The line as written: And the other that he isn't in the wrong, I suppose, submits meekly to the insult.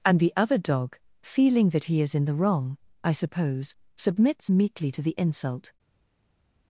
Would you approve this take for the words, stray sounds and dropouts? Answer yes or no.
no